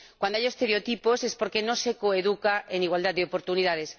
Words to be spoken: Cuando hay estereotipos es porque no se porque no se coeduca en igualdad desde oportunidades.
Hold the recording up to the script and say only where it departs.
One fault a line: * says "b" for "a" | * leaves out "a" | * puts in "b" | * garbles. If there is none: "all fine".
* leaves out "porque no se"
* says "de" for "desde"